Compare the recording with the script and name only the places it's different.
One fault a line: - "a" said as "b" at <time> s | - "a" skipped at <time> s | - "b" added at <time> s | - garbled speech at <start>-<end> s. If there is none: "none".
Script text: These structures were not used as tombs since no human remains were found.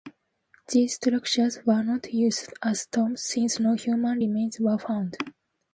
none